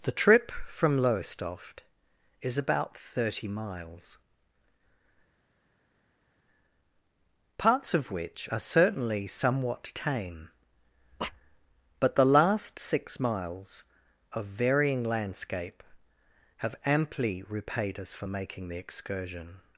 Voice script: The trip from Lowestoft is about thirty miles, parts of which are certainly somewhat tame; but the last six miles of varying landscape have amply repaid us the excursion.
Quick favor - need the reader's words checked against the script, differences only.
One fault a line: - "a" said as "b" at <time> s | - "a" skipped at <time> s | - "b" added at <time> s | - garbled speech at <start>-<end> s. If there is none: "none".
- "for making" added at 18.1 s